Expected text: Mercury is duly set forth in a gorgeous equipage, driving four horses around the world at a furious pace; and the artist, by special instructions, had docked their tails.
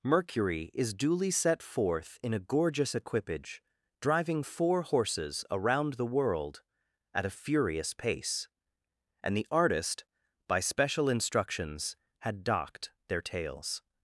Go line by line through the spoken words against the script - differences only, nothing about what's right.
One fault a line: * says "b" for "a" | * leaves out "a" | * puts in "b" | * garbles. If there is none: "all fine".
all fine